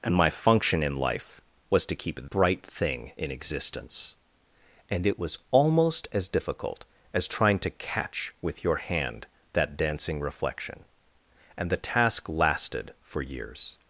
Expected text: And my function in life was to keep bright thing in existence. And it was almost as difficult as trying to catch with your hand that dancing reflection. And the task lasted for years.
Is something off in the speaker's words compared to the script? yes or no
no